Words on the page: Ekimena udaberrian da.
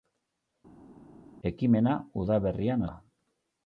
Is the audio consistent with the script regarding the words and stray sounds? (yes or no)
yes